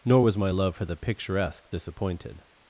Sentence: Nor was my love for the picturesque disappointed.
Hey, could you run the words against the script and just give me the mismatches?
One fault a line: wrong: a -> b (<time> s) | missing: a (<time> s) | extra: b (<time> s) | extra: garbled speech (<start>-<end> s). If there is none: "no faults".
no faults